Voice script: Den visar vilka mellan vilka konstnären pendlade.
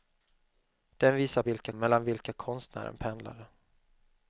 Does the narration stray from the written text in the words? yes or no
no